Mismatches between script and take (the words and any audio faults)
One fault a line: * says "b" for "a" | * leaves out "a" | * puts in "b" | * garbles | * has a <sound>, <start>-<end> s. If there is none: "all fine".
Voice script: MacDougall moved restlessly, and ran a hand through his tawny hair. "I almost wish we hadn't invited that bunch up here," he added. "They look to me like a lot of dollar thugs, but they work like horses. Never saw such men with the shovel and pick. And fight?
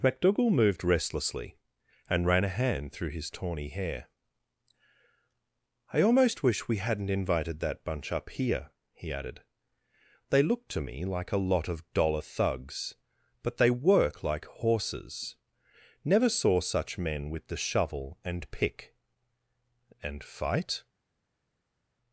all fine